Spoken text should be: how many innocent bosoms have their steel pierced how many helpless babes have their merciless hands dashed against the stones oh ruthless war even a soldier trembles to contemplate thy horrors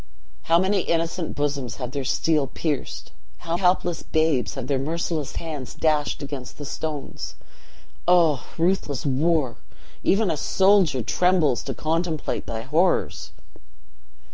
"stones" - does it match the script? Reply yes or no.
yes